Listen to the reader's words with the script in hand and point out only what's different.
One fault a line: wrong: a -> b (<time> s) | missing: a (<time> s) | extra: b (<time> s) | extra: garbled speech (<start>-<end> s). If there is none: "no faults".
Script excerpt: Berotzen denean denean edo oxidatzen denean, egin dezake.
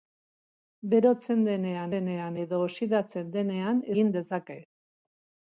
no faults